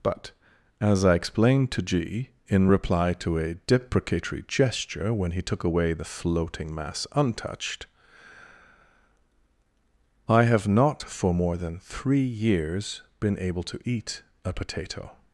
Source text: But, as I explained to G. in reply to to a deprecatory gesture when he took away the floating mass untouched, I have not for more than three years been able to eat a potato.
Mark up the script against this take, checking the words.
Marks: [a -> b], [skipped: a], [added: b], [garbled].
But, as I explained to G. in reply to [skipped: to] a deprecatory gesture when he took away the floating mass untouched, I have not for more than three years been able to eat a potato.